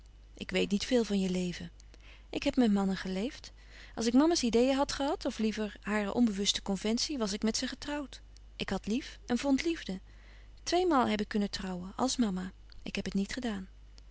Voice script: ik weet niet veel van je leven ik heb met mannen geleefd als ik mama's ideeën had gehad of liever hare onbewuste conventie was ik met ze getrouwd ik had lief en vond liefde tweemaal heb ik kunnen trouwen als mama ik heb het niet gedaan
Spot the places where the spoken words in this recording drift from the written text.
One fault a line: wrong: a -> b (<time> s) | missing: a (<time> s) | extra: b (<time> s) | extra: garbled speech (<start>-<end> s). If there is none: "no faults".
no faults